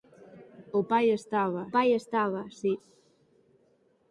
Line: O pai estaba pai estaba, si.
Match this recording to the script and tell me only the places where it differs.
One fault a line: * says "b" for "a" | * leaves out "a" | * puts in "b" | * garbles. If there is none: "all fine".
all fine